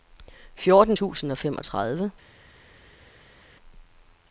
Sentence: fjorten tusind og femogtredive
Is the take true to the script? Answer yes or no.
yes